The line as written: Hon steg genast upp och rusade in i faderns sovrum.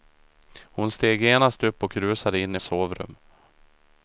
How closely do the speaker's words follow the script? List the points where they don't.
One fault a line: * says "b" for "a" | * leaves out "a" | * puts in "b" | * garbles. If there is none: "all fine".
* leaves out "faderns"